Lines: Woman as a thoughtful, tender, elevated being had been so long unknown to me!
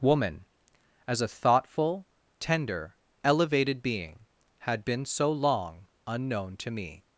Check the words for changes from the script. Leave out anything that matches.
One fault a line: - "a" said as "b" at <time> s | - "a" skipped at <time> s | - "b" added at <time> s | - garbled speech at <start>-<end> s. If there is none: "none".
none